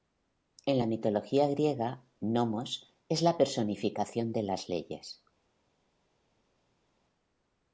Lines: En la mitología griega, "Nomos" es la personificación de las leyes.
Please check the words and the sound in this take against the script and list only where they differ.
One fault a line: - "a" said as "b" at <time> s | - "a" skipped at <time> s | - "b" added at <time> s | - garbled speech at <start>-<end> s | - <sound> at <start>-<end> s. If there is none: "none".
none